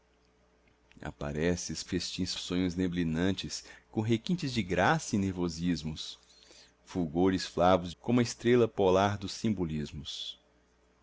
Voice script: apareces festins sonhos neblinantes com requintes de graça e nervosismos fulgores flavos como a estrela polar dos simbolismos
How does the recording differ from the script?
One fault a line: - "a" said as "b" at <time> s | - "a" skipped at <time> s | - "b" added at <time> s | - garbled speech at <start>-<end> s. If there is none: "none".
none